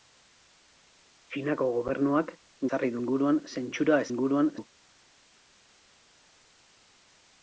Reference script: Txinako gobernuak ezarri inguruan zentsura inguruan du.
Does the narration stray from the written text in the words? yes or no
no